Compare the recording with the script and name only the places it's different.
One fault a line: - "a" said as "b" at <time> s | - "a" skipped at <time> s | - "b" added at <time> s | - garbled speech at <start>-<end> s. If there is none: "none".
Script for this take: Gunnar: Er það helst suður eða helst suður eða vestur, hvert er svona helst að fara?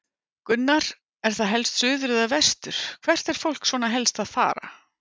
- "helst suður eða" skipped at 2.2 s
- "fólk" added at 3.4 s